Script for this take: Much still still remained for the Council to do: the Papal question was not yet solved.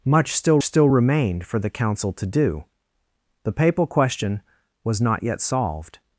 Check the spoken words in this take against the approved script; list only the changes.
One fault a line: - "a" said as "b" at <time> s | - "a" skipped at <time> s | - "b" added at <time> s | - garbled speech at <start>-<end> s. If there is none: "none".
none